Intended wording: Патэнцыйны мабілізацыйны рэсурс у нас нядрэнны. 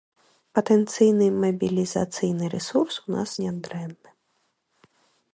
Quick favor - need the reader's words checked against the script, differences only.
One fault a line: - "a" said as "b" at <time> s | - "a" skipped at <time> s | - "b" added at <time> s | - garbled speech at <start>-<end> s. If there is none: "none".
none